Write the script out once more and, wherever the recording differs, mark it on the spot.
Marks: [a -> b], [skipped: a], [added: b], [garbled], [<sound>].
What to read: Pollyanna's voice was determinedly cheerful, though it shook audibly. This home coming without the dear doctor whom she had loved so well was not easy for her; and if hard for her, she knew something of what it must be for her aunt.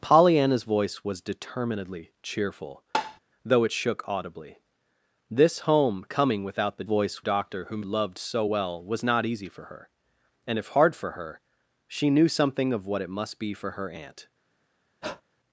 Pollyanna's voice was determinedly cheerful, [tap] though it shook audibly. This home coming without the [dear -> voice] doctor whom [skipped: she had] loved so well was not easy for her; and if hard for her, she knew something of what it must be for her aunt. [breath]